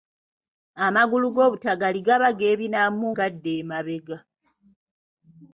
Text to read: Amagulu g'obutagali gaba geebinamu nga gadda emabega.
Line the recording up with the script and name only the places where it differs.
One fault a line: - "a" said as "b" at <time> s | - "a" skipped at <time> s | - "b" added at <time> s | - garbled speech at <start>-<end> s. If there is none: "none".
- "nga" skipped at 3.1 s